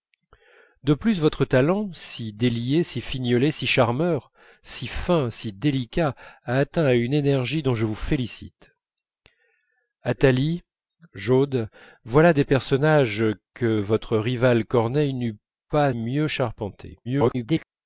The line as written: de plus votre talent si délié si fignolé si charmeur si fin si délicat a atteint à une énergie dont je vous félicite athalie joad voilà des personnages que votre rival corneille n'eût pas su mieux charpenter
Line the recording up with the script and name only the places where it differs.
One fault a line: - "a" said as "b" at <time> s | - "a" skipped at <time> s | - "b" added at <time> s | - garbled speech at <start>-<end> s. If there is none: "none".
- "su" skipped at 15.9 s
- garbled speech at 17.0-17.6 s